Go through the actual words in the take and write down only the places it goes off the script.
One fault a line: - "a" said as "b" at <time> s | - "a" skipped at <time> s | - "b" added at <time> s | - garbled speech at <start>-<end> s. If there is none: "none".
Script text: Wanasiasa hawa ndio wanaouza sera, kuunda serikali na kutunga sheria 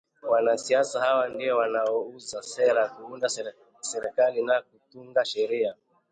none